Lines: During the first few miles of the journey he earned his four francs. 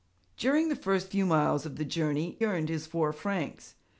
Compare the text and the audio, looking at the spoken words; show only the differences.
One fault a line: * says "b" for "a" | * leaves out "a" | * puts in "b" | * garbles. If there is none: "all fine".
* leaves out "he"